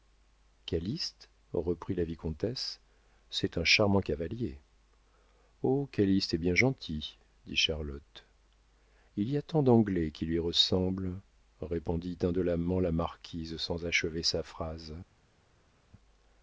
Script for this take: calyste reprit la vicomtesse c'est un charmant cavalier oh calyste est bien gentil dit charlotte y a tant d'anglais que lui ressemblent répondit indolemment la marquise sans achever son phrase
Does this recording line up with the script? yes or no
no